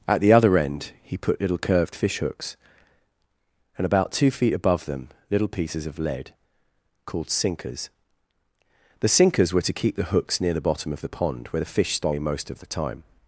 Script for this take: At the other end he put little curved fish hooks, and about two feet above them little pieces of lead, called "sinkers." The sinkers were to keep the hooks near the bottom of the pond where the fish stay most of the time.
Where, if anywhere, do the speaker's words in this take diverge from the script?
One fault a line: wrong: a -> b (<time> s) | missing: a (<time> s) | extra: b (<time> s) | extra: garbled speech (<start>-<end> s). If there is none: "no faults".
no faults